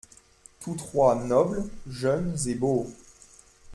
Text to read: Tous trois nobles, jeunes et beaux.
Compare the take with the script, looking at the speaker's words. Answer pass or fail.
pass